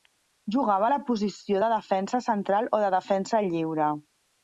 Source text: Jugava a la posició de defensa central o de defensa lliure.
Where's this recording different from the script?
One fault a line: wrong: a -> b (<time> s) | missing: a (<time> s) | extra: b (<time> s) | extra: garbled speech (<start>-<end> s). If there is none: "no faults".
no faults